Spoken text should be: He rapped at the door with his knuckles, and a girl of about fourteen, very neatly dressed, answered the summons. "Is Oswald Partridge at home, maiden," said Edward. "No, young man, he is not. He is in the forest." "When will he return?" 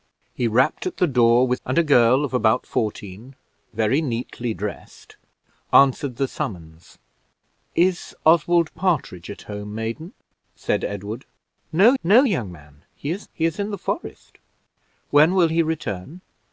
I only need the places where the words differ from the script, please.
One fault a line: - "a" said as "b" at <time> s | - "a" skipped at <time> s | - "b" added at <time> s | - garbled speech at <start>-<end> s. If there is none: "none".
- "his knuckles" skipped at 1.6 s
- "no" added at 12.0 s
- "not" skipped at 13.3 s